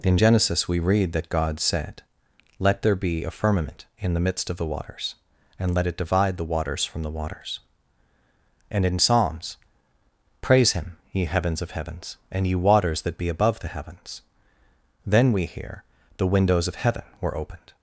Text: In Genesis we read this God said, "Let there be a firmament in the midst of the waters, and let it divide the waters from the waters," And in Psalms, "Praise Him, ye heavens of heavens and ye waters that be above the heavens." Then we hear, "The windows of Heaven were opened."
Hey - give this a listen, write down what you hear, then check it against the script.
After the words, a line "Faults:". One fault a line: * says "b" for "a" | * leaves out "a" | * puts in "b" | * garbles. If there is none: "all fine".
In Genesis we read that God said, "Let there be a firmament in the midst of the waters, and let it divide the waters from the waters," And in Psalms, "Praise Him, ye heavens of heavens and ye waters that be above the heavens." Then we hear, "The windows of Heaven were opened."
Faults:
* says "that" for "this"